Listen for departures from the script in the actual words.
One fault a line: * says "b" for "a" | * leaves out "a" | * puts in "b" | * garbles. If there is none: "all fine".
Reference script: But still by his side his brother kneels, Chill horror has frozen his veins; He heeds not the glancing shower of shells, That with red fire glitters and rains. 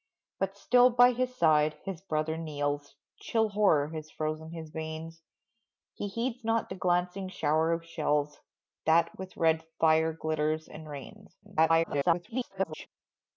* garbles